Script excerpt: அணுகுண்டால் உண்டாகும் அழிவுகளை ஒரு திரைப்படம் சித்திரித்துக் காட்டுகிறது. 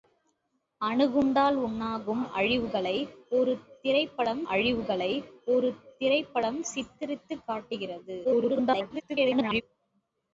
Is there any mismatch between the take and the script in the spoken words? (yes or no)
yes